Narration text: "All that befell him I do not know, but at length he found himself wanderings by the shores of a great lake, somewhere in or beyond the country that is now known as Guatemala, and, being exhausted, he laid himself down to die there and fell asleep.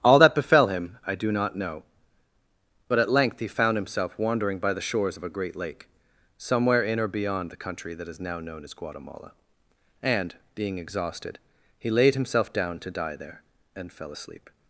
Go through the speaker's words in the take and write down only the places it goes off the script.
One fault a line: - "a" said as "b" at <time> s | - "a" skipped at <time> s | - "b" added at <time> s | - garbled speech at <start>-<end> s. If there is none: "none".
- "wanderings" said as "wandering" at 4.2 s